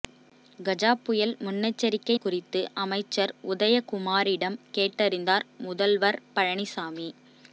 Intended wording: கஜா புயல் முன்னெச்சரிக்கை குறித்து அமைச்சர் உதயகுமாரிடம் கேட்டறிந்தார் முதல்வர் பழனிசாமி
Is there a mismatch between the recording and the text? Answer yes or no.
no